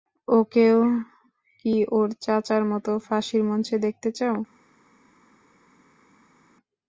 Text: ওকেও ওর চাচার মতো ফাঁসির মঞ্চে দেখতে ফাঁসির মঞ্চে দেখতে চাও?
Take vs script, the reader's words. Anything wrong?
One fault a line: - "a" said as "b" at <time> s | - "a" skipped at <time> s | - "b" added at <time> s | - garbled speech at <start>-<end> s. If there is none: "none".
- "কি" added at 1.6 s
- "ফাঁসির মঞ্চে দেখতে" skipped at 4.1 s